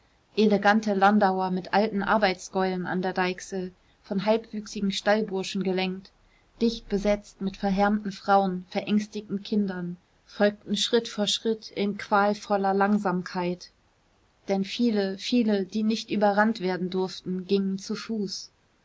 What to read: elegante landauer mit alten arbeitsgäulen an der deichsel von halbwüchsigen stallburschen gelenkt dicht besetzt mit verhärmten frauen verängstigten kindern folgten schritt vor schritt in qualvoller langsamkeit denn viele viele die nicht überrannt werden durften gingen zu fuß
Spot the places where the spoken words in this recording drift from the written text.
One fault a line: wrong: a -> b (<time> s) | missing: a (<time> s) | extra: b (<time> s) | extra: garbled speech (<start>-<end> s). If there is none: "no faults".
no faults